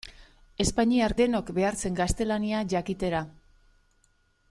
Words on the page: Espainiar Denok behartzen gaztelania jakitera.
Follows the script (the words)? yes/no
yes